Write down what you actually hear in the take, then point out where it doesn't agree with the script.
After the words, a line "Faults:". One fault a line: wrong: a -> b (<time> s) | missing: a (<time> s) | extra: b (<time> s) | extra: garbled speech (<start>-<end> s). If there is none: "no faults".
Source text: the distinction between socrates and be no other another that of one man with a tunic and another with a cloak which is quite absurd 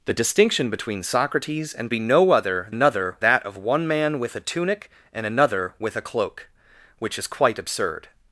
the distinction between socrates and be no other another that of one man with a tunic and another with a cloak which is quite absurd
Faults:
no faults